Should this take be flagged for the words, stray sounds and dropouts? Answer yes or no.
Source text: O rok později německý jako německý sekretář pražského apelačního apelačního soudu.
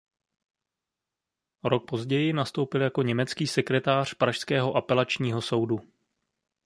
yes